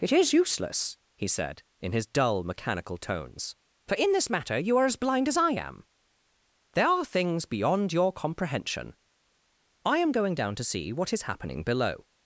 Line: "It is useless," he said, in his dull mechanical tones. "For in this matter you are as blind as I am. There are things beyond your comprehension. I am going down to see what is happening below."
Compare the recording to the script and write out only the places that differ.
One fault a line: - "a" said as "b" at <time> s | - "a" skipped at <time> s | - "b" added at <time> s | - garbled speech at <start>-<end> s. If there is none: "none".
none